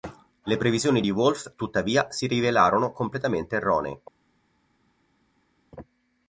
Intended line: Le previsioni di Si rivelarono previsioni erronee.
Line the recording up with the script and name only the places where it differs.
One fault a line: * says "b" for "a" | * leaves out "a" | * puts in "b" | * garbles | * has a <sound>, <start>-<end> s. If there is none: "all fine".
* puts in "Wolff tuttavia"
* says "completamente" for "previsioni"